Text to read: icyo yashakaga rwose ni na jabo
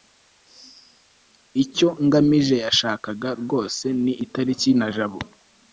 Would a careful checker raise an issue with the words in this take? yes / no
yes